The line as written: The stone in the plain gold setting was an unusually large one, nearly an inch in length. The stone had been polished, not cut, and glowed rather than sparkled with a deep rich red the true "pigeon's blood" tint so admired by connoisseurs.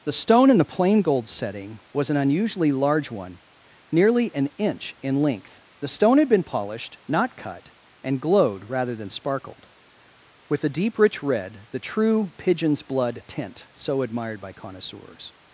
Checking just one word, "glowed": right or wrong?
right